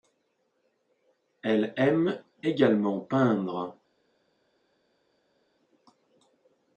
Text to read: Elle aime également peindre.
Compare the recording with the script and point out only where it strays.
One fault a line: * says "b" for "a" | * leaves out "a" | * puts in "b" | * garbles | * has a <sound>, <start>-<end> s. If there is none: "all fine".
all fine